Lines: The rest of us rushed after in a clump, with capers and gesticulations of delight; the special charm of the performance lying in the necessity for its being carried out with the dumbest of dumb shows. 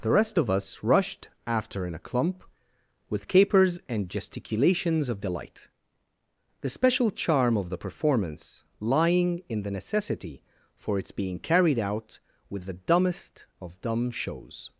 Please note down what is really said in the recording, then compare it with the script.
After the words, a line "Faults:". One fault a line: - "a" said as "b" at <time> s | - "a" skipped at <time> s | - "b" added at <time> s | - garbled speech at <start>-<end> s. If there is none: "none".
The rest of us rushed after in a clump, with capers and gesticulations of delight; the special charm of the performance lying in the necessity for its being carried out with the dumbest of dumb shows.
Faults:
none